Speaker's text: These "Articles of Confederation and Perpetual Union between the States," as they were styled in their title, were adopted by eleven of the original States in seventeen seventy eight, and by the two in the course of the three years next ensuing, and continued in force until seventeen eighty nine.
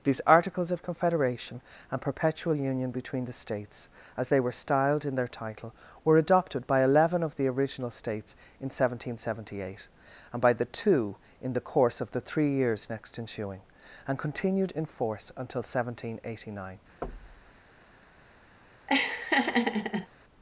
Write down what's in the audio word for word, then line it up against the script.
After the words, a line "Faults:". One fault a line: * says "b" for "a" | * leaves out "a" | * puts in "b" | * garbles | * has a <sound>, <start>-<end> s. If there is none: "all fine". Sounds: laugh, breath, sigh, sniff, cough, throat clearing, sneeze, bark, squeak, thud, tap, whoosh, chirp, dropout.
These "Articles of Confederation and Perpetual Union between the States," as they were styled in their title, were adopted by eleven of the original States in seventeen seventy eight, and by the two in the course of the three years next ensuing, and continued in force until seventeen eighty nine.
Faults:
* has a thud, 17.0-17.6 s
* has a laugh, 18.9-20.1 s